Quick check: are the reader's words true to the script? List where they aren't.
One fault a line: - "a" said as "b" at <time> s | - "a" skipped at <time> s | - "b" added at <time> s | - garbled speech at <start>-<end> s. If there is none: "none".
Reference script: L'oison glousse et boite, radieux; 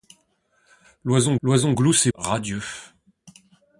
- "l'oison" added at 1.4 s
- "boite" skipped at 2.1 s